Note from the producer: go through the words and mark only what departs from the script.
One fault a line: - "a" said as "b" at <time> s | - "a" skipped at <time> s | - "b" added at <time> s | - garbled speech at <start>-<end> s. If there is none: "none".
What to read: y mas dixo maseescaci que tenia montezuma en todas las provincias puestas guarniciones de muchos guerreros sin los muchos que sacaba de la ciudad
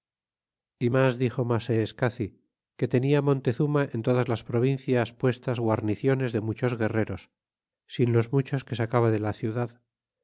none